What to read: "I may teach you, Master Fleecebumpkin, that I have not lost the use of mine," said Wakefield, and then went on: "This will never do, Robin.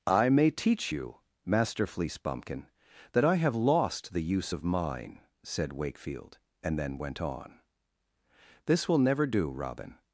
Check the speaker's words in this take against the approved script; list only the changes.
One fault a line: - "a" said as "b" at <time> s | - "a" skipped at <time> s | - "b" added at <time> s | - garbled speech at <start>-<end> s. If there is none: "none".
- "not" skipped at 3.6 s